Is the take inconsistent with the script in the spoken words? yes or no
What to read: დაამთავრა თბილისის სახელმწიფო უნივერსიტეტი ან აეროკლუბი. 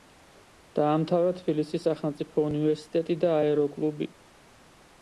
yes